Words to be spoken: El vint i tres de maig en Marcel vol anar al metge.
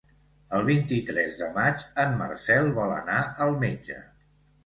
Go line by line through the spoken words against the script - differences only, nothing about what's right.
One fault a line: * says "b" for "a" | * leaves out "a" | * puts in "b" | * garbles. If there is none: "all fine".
all fine